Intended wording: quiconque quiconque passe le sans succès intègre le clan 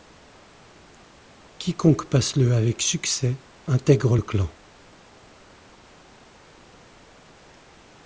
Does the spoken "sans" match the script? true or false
false